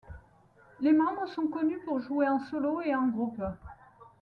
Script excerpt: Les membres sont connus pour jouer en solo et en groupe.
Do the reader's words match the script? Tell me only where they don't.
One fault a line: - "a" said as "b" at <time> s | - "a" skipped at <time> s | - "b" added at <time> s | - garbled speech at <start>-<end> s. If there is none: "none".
none